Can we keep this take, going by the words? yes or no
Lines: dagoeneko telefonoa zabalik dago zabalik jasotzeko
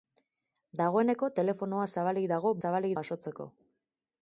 yes